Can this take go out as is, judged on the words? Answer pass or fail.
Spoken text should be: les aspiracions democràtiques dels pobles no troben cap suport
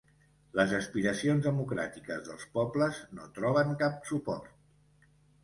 pass